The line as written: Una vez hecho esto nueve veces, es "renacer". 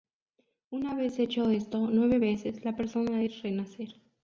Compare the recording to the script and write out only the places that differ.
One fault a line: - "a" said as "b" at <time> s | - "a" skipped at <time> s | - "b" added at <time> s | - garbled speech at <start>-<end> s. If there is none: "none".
- "la persona" added at 2.6 s